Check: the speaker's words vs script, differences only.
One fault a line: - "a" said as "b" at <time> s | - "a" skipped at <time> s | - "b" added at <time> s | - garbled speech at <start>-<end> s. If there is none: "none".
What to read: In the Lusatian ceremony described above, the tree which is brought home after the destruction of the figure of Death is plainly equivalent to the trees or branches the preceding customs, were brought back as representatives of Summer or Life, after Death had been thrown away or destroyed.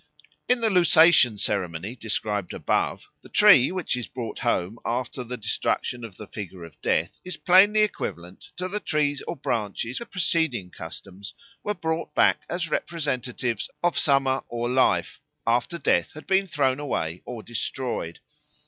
none